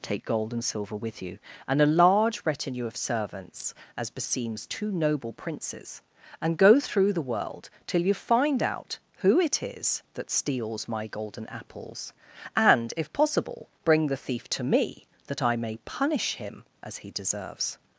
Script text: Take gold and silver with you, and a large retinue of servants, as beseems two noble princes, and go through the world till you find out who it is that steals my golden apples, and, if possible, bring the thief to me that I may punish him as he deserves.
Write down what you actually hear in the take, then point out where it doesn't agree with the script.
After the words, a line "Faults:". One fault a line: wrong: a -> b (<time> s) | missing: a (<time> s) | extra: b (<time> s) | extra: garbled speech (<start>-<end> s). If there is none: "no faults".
Take gold and silver with you, and a large retinue of servants, as beseems two noble princes, and go through the world till you find out who it is that steals my golden apples, and, if possible, bring the thief to me that I may punish him as he deserves.
Faults:
no faults